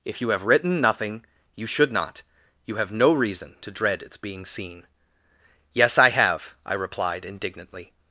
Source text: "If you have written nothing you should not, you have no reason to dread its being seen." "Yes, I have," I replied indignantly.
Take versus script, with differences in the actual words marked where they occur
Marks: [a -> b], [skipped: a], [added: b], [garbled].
"If you have written nothing you should not, you have no reason to dread its being seen." "Yes, I have," I replied indignantly.